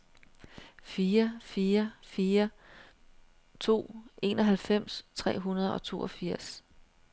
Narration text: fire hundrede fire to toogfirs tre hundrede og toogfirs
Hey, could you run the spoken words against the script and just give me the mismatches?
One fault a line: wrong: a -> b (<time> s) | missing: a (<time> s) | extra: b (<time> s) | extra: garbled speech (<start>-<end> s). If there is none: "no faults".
wrong: hundrede -> fire (1.4 s)
wrong: toogfirs -> enoghalvfems (4.2 s)